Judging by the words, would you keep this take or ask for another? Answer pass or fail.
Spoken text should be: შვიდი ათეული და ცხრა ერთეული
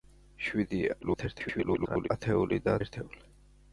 fail